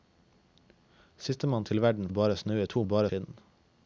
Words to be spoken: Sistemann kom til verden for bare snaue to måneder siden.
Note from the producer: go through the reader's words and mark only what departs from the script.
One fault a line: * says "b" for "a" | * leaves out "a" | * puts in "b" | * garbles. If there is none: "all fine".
* leaves out "kom"
* leaves out "for"
* says "bare" for "måneder"